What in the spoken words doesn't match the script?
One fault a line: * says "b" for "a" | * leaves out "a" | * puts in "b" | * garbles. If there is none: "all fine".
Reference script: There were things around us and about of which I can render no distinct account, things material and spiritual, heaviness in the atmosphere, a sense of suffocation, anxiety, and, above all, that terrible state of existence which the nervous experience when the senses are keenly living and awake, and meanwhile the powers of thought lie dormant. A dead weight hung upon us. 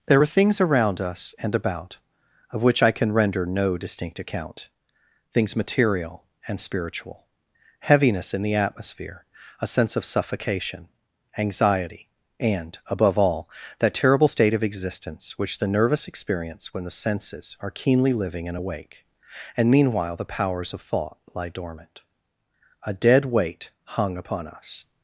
* says "are" for "were"